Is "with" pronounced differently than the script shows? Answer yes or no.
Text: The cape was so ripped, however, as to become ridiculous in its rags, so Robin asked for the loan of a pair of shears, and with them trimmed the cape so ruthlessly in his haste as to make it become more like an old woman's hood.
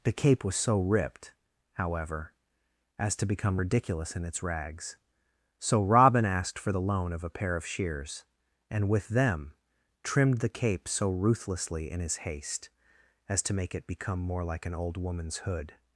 no